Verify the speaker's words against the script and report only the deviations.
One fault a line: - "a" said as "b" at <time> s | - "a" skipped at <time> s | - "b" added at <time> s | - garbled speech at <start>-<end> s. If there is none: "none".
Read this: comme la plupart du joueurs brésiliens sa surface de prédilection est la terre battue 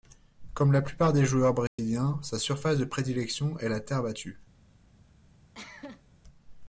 - "du" said as "des" at 1.1 s